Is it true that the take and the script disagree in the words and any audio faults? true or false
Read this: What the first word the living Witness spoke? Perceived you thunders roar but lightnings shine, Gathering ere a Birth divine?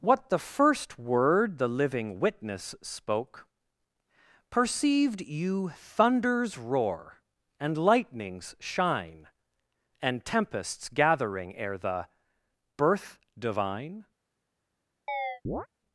true